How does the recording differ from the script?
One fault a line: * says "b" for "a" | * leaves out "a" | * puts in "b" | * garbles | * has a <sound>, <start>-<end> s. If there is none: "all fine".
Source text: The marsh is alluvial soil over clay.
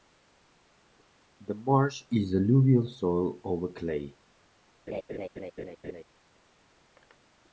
* has a laugh, 4.9-6.0 s